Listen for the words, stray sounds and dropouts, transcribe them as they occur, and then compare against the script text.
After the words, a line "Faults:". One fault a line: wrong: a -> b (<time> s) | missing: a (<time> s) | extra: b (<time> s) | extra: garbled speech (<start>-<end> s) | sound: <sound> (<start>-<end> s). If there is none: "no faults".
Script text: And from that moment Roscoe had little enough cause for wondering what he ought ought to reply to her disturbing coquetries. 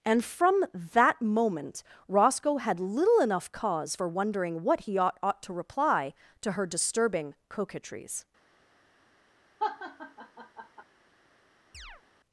And from that moment Roscoe had little enough cause for wondering what he ought ought to reply to her disturbing coquetries.
Faults:
sound: laugh (9.6-10.8 s)
sound: chirp (11.7-12.0 s)